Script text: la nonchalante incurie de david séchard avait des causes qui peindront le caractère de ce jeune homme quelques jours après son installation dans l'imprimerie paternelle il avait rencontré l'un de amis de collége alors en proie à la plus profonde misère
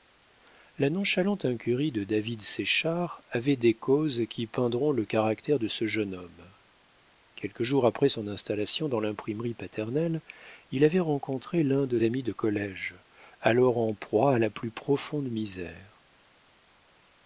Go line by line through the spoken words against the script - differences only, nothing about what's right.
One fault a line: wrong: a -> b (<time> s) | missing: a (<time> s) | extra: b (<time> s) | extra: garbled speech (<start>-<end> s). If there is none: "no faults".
no faults